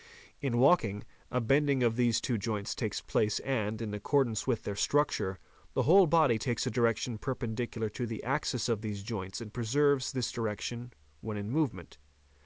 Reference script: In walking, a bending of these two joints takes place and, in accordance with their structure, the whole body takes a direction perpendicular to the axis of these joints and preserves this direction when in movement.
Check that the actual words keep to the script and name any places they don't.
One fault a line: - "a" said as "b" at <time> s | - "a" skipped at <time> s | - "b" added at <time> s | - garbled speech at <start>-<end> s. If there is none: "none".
none